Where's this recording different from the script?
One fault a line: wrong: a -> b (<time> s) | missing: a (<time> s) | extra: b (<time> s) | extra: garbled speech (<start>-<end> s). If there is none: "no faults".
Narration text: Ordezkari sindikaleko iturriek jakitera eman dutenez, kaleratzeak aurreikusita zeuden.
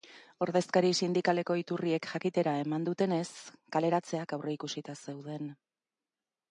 no faults